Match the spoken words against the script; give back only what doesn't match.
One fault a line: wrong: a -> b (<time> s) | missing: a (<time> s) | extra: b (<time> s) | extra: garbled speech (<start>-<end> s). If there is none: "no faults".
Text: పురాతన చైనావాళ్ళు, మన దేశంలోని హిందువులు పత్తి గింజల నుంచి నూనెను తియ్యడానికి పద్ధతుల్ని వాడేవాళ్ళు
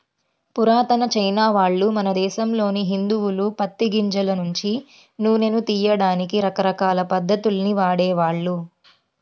extra: రకరకాల (6.5 s)